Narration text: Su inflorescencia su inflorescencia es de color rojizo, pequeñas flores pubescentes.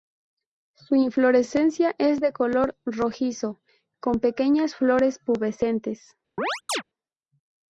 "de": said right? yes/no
yes